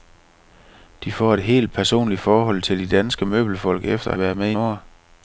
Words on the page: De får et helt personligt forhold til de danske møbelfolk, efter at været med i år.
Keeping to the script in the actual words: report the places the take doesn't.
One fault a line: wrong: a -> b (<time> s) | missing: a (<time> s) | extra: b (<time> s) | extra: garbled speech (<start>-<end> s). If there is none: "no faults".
no faults